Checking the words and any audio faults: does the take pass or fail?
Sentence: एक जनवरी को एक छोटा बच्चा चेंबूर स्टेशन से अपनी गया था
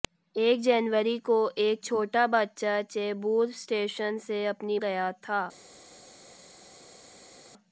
pass